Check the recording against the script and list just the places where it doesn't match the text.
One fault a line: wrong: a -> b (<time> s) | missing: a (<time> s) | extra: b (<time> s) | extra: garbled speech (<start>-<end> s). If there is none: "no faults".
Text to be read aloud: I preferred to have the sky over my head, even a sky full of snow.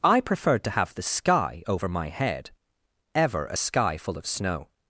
wrong: even -> ever (3.2 s)